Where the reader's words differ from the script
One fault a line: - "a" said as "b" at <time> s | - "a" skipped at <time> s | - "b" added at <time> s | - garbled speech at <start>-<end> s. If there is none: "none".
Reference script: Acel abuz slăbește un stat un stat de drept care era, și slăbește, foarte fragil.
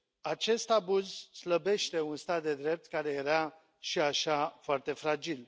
- "Acel" said as "Acest" at 0.2 s
- "un stat" skipped at 2.4 s
- "slăbește" said as "așa" at 4.0 s